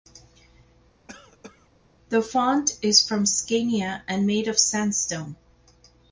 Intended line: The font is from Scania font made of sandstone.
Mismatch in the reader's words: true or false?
true